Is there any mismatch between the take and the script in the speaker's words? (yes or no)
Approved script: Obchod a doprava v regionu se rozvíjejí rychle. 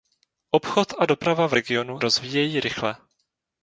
yes